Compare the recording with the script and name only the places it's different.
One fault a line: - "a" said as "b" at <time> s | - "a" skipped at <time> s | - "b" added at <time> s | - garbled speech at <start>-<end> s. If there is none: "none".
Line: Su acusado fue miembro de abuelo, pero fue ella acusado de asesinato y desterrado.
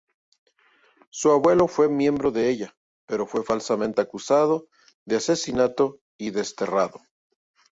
- "acusado" said as "abuelo" at 1.3 s
- "abuelo" said as "ella" at 2.5 s
- "ella" said as "falsamente" at 3.4 s